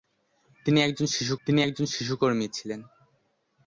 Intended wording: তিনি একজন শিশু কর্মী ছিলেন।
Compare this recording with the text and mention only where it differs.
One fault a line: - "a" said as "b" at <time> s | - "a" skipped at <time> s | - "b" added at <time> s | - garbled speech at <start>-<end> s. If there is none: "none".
- "তিনি একজন শিশু" added at 1.5 s